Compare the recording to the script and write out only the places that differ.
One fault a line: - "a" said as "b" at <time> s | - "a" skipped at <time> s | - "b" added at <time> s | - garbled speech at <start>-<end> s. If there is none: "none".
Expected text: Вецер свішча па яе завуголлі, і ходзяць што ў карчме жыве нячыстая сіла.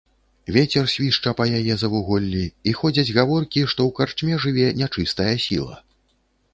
- "гаворкі" added at 3.2 s